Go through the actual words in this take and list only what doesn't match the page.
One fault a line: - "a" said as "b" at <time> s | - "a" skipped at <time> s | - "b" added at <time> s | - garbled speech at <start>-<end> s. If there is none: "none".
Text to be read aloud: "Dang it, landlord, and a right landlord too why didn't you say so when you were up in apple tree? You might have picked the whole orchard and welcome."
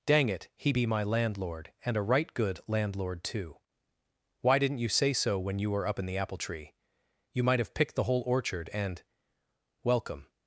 - "he be my" added at 0.6 s
- "good" added at 2.3 s
- "the" added at 6.1 s